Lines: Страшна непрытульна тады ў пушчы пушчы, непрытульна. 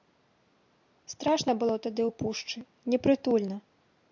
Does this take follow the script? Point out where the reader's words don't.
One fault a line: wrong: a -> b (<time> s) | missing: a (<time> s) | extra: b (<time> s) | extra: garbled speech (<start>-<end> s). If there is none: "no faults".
wrong: непрытульна -> было (1.6 s)
missing: пушчы (2.6 s)